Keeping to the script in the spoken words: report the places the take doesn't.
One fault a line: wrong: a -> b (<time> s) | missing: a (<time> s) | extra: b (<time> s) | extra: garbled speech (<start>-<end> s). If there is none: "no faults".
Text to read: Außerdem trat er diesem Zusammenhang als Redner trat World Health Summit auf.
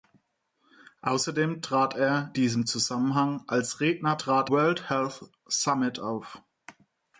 no faults